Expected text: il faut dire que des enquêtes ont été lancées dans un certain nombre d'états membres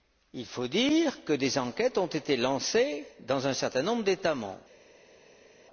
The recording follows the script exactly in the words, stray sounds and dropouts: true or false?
true